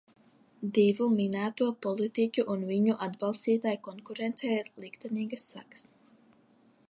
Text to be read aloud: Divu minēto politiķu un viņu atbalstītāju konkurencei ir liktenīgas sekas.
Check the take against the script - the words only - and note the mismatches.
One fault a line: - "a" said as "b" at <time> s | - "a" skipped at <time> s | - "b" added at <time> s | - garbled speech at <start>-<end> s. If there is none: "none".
none